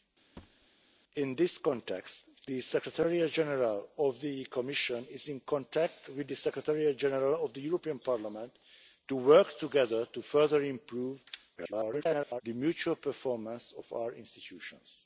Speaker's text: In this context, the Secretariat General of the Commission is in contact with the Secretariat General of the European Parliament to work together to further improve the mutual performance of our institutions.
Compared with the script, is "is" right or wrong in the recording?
right